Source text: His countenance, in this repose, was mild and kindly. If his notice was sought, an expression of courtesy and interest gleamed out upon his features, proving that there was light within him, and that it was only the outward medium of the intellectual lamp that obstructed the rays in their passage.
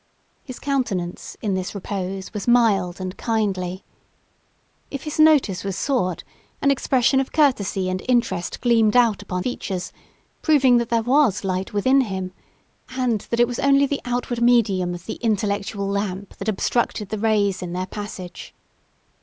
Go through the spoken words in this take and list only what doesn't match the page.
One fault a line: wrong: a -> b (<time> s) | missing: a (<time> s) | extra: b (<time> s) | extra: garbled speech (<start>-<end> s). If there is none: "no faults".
missing: his (9.4 s)